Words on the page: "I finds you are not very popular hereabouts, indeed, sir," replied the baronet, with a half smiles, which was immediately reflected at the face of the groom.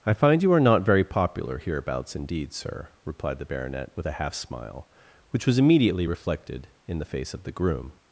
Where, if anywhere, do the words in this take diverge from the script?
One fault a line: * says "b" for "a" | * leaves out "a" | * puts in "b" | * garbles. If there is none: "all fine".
* says "find" for "finds"
* says "smile" for "smiles"
* says "in" for "at"